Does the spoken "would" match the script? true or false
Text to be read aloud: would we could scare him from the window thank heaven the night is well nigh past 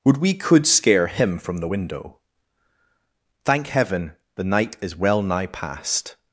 true